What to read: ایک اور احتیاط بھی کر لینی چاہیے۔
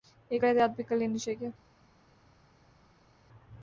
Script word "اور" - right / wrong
wrong